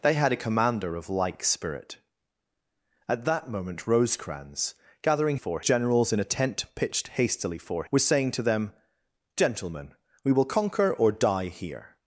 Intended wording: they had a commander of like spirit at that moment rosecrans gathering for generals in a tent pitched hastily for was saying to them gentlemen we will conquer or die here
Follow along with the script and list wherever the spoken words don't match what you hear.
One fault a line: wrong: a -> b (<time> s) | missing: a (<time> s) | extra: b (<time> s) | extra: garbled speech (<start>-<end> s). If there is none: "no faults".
no faults